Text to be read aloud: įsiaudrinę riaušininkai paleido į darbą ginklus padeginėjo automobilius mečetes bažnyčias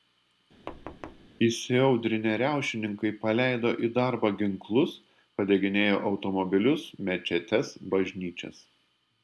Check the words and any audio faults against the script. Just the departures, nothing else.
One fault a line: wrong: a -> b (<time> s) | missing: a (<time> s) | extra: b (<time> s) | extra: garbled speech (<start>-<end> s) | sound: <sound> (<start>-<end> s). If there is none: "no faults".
sound: thud (0.7-1.3 s)